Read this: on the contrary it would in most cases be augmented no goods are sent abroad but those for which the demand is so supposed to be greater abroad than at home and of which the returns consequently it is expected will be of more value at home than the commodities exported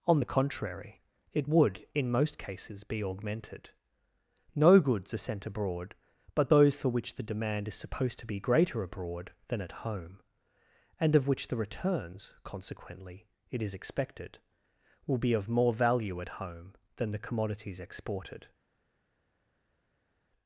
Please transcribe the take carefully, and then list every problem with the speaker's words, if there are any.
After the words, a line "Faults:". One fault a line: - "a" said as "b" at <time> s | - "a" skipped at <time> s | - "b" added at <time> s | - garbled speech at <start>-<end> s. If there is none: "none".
on the contrary it would in most cases be augmented no goods are sent abroad but those for which the demand is supposed to be greater abroad than at home and of which the returns consequently it is expected will be of more value at home than the commodities exported
Faults:
- "so" skipped at 7.8 s